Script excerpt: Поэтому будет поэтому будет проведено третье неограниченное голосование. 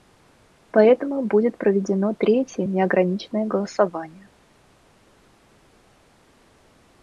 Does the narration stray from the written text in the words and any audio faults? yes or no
yes